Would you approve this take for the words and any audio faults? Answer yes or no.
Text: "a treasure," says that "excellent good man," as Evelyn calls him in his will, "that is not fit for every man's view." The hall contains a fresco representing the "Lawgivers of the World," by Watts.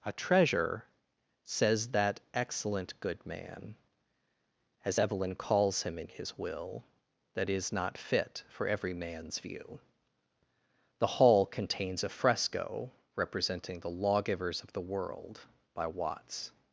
yes